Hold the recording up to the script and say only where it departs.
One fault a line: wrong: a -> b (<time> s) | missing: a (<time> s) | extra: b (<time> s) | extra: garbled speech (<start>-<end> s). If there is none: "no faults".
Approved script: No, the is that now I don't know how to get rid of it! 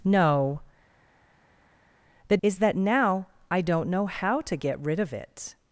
no faults